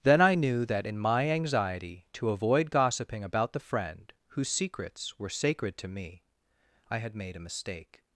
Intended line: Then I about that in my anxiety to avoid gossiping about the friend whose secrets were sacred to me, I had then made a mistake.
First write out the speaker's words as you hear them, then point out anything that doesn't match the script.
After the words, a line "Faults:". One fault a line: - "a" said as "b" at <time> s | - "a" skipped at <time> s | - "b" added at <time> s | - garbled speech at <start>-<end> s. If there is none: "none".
Then I knew that in my anxiety to avoid gossiping about the friend whose secrets were sacred to me, I had made a mistake.
Faults:
- "about" said as "knew" at 0.3 s
- "then" skipped at 7.2 s